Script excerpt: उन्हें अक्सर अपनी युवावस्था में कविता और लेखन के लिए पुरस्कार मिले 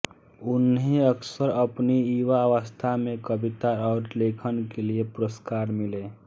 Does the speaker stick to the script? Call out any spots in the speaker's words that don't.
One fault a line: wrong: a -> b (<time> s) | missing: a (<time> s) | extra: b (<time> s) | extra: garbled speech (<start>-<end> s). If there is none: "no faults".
no faults